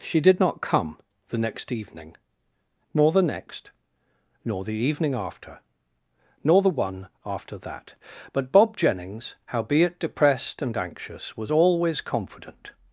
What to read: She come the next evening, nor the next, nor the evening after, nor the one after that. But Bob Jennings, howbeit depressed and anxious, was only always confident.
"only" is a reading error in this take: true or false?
true